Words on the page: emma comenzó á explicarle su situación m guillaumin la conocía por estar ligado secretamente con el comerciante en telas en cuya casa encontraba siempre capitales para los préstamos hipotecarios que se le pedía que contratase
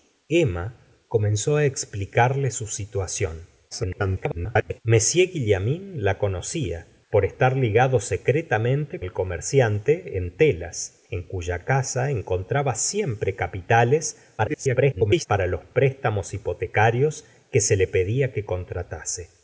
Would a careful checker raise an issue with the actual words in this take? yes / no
yes